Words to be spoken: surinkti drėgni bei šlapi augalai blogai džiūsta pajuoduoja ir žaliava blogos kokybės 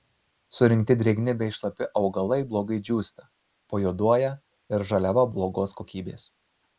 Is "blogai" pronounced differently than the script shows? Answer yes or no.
no